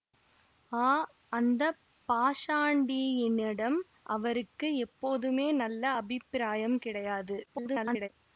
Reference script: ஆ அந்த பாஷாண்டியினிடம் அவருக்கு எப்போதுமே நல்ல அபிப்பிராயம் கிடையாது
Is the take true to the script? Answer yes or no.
no